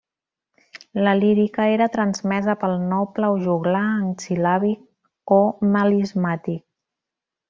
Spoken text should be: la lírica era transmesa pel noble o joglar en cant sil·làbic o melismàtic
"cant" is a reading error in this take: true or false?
true